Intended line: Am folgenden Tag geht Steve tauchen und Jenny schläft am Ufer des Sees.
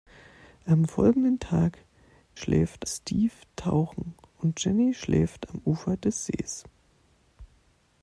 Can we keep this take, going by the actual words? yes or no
no